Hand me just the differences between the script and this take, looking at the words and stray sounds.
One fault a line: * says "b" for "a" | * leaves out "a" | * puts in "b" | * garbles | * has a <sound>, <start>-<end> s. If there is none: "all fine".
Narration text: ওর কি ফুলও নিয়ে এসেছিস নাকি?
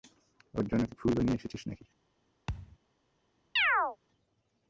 * puts in "জন্য"
* has a thud, 2.5-2.8 s
* has a chirp, 3.6-4.0 s